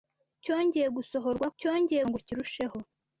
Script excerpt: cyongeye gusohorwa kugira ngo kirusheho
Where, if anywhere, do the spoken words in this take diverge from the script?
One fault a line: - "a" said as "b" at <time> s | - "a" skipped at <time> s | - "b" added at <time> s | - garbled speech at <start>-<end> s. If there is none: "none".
- "kugira" said as "cyongeye" at 1.6 s